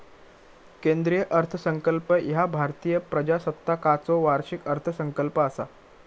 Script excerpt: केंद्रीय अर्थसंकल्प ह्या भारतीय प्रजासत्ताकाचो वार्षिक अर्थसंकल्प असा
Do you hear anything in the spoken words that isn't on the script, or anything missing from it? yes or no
no